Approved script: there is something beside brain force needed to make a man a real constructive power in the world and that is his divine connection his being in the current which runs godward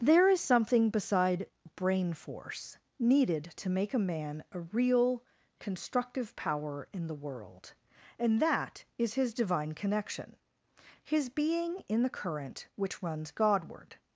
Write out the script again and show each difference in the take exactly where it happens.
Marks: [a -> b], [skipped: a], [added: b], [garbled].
there is something beside brain force needed to make a man a real constructive power in the world and that is his divine connection his being in the current which runs godward